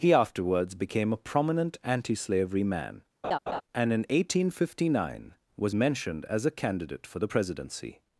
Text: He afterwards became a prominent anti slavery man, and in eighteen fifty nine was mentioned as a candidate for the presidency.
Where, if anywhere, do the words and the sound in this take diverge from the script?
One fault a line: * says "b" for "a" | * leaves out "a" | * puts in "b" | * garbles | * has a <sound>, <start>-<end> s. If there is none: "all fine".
* has a laugh, 3.2-3.6 s